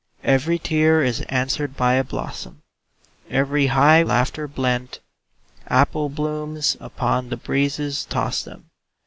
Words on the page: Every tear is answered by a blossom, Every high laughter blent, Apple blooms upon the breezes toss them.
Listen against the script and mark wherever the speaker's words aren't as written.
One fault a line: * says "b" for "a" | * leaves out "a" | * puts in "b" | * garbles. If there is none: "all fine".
all fine